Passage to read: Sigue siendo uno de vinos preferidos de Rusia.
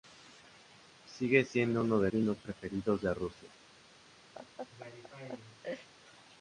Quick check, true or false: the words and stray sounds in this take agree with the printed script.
false